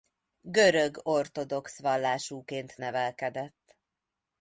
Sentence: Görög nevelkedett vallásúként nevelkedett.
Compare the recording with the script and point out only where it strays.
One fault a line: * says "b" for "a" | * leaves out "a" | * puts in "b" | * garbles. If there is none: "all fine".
* says "ortodox" for "nevelkedett"